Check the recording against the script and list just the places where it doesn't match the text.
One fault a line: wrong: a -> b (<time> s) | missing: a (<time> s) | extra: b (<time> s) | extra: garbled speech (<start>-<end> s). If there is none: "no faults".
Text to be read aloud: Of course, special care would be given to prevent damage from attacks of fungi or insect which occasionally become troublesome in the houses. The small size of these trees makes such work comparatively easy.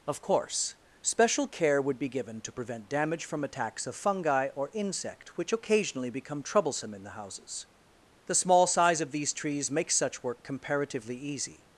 no faults